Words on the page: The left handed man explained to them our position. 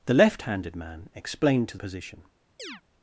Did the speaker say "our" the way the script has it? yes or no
no